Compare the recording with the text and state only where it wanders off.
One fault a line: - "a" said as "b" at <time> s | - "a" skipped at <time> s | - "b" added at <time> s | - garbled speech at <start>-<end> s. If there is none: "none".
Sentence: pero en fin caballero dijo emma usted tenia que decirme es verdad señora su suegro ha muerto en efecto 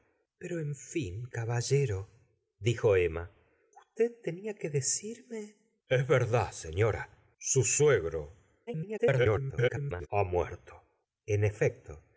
- garbled speech at 8.7-10.1 s